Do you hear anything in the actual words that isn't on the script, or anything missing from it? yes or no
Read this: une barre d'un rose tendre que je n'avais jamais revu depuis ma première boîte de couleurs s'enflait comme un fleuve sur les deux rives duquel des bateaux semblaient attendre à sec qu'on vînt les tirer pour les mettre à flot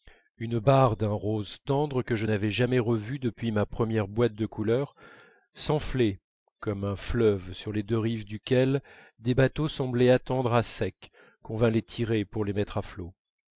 no